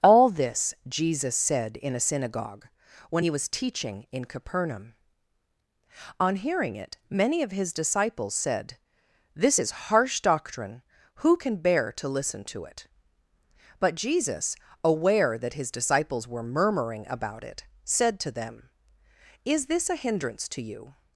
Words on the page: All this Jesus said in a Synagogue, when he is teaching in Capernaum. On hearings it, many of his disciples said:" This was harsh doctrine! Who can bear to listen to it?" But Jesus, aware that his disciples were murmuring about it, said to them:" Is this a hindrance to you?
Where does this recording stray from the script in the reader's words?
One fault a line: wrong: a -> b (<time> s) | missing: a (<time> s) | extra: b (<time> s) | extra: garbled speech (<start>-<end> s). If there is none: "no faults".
wrong: is -> was (3.3 s)
wrong: hearings -> hearing (6.4 s)
wrong: was -> is (9.6 s)